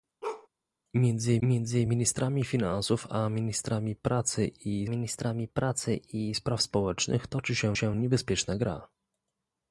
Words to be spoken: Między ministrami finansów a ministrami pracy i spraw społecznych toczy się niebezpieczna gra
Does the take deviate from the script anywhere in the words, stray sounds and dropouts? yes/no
yes